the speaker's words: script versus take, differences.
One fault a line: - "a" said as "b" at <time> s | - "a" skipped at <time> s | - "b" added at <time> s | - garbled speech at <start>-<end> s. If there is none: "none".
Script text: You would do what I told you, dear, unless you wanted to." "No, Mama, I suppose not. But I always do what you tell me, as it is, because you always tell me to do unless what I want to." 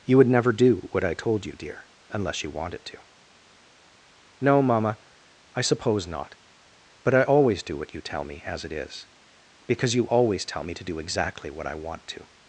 - "never" added at 0.3 s
- "unless" said as "exactly" at 11.0 s